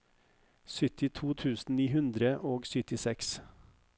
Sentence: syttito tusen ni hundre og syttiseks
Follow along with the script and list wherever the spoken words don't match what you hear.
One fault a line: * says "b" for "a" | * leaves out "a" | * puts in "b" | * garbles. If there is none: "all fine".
all fine